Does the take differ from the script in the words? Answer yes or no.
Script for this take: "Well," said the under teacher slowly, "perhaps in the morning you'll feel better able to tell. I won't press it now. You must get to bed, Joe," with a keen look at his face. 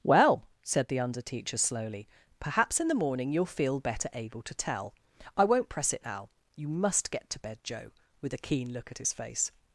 no